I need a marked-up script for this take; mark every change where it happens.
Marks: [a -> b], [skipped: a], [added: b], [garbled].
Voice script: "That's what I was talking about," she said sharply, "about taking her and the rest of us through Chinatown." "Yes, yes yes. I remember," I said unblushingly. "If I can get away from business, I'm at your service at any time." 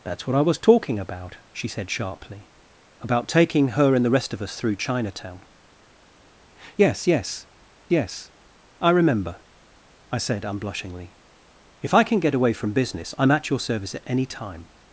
"That's what I was talking about," she said sharply, "about taking her and the rest of us through Chinatown." "Yes, yes yes. I remember," I said unblushingly. "If I can get away from business, I'm at your service at any time."